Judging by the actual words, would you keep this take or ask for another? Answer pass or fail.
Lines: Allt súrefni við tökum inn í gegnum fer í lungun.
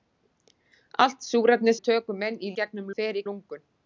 pass